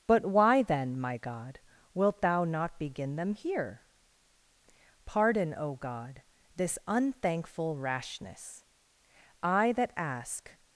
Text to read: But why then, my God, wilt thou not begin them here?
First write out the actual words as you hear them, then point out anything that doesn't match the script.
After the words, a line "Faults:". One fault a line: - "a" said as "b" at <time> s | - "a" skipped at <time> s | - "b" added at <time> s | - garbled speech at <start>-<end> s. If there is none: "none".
But why then, my God, wilt thou not begin them here? Pardon, O God, this unthankful rashness; I that ask
Faults:
- "Pardon O God this unthankful rashness I that ask" added at 5.0 s